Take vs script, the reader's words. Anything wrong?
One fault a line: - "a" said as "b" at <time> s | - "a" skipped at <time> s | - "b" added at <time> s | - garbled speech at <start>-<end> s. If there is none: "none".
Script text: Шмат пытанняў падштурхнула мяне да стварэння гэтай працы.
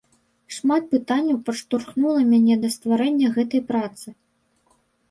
none